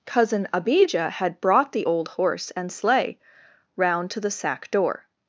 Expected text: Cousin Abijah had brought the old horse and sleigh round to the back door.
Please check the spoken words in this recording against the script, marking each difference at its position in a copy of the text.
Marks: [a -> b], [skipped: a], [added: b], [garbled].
Cousin Abijah had brought the old horse and sleigh round to the [back -> sack] door.